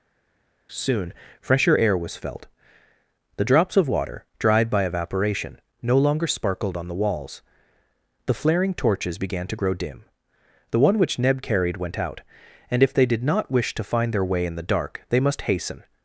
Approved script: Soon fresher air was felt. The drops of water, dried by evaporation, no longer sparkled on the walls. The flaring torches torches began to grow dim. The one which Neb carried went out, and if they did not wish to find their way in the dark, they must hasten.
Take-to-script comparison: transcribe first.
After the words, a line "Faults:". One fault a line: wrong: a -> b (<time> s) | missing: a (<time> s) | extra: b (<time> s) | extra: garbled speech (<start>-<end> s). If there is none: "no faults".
Soon fresher air was felt. The drops of water, dried by evaporation, no longer sparkled on the walls. The flaring torches began to grow dim. The one which Neb carried went out, and if they did not wish to find their way in the dark, they must hasten.
Faults:
missing: torches (9.2 s)